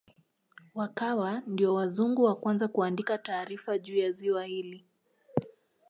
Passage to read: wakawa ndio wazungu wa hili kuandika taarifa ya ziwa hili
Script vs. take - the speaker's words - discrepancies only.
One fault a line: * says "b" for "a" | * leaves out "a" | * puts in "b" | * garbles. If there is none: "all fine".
* says "kwanza" for "hili"
* puts in "juu"